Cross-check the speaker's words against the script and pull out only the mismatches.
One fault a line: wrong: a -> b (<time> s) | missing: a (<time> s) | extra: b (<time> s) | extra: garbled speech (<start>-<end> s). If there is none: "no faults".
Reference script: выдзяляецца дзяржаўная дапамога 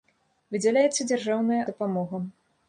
no faults